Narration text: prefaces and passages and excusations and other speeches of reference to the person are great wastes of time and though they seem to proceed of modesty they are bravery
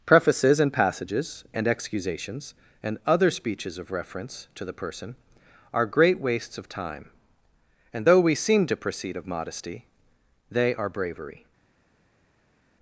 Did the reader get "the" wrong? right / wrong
right